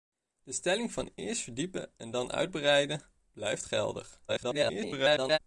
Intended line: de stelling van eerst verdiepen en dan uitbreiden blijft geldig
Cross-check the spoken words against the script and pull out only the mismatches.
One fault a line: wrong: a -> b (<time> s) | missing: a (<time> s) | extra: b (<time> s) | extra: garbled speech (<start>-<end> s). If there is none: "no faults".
extra: garbled speech (4.3-5.4 s)